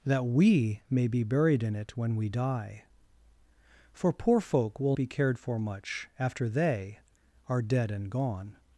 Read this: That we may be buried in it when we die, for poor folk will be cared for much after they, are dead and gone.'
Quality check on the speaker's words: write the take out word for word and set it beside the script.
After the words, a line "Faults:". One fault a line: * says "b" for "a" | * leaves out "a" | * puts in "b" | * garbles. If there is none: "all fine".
That we may be buried in it when we die, for poor folk will be cared for much after they, are dead and gone.'
Faults:
all fine